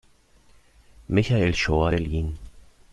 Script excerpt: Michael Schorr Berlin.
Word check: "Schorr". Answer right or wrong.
right